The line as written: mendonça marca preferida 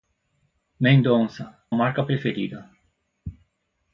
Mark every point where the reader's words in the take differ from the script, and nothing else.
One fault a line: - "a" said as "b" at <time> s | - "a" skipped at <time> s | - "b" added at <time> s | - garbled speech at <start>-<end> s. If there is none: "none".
none